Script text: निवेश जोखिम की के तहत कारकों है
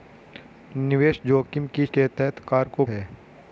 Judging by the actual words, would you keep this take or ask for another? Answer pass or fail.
pass